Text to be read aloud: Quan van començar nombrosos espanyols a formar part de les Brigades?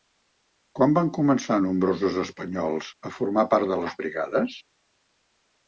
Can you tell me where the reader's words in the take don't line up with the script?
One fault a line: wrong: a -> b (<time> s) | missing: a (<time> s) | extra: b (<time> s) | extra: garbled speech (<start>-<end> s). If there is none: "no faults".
no faults